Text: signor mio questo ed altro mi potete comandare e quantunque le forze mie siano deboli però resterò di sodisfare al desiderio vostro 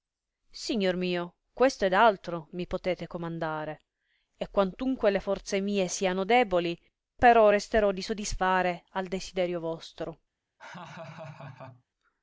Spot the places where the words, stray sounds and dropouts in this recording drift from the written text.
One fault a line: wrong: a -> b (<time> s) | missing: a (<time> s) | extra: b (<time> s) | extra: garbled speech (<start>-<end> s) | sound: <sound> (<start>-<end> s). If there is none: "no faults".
sound: laugh (10.6-11.8 s)